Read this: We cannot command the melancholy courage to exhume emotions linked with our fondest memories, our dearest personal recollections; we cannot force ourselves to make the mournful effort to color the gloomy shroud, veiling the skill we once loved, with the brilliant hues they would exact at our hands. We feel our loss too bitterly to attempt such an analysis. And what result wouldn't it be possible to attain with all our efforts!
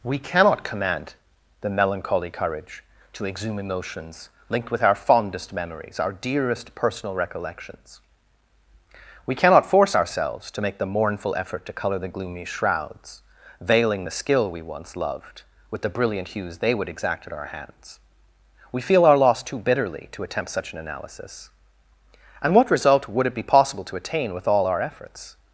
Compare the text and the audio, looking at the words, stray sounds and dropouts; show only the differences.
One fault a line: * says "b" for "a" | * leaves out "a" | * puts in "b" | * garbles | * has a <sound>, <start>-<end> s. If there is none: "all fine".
* says "shrouds" for "shroud"
* says "would" for "wouldn't"